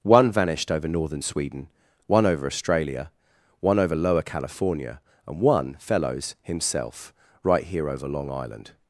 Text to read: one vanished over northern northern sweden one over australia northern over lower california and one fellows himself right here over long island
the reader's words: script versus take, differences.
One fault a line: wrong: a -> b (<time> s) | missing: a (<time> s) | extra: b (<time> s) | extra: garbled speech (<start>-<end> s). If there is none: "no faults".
missing: northern (1.2 s)
wrong: northern -> one (3.6 s)